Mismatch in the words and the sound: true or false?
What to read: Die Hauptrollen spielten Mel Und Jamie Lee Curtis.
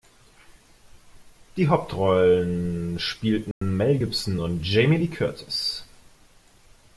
true